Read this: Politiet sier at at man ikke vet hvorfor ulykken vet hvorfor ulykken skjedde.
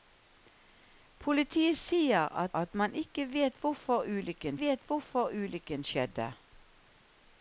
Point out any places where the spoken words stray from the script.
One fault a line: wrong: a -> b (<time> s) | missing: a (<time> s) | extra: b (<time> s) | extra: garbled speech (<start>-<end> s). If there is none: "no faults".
no faults